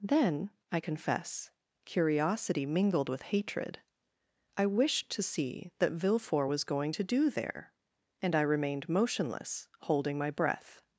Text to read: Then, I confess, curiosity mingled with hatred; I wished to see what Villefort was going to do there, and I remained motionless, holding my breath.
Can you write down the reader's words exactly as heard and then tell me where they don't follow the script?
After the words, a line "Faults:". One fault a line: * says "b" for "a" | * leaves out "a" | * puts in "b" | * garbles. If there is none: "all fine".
Then, I confess, curiosity mingled with hatred; I wished to see that Villefort was going to do there, and I remained motionless, holding my breath.
Faults:
* says "that" for "what"